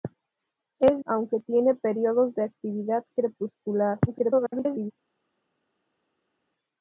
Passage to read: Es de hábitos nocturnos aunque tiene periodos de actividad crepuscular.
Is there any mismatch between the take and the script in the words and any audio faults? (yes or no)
yes